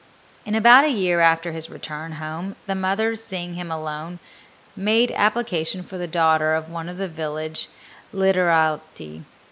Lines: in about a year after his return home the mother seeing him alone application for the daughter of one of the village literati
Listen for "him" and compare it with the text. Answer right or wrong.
right